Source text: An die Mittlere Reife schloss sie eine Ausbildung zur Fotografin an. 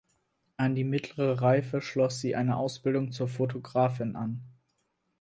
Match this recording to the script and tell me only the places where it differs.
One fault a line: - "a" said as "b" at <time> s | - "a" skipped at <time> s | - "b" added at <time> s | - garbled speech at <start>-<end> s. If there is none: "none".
none